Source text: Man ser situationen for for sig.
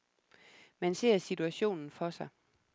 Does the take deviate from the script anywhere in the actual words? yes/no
yes